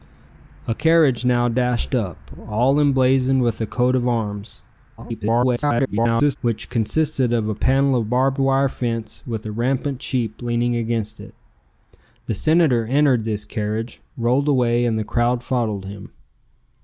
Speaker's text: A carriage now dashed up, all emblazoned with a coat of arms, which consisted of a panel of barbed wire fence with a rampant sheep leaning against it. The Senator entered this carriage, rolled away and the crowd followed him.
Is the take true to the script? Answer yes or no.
no